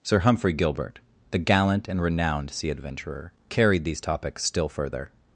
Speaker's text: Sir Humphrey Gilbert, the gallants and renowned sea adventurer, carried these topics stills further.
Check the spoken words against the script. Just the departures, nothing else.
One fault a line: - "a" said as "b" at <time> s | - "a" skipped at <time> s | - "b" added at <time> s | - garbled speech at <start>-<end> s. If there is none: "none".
- "gallants" said as "gallant" at 1.4 s
- "stills" said as "still" at 4.4 s